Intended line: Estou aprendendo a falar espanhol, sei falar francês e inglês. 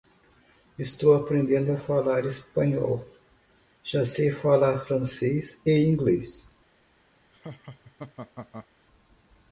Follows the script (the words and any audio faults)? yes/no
no